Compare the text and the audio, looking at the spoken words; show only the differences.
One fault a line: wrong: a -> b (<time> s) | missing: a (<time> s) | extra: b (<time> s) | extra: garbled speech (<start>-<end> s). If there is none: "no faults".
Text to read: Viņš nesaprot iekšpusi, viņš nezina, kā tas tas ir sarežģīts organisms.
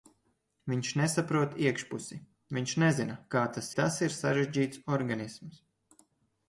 no faults